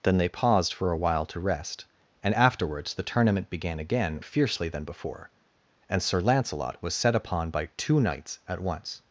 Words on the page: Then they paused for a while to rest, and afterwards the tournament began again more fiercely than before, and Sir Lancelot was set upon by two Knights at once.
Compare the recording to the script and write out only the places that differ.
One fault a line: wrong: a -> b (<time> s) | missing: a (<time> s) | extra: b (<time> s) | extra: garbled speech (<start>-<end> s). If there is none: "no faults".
missing: more (4.2 s)